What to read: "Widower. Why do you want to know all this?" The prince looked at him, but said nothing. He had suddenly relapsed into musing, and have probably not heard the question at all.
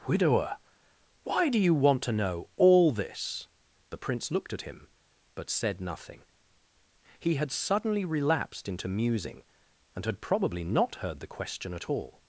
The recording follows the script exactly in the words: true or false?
false